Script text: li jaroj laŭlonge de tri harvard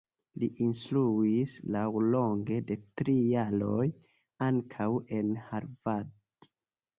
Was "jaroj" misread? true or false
true